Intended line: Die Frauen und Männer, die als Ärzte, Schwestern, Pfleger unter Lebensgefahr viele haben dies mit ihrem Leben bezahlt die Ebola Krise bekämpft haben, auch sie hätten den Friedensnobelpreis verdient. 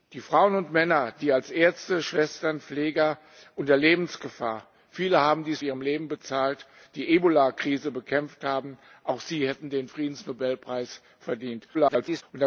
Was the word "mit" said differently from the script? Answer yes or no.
yes